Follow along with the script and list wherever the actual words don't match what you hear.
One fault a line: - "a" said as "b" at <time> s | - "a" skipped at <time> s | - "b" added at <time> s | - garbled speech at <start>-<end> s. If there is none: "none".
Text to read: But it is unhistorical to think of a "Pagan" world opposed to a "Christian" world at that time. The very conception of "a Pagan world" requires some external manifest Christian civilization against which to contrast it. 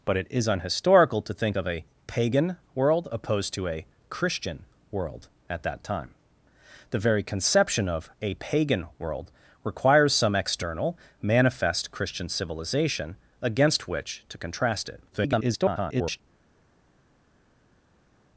- garbled speech at 15.1-16.2 s